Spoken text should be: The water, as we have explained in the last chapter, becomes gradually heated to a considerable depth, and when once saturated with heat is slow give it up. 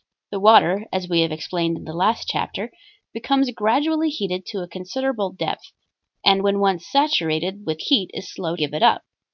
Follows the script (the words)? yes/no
yes